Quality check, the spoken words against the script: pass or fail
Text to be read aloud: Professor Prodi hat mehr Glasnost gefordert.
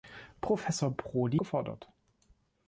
fail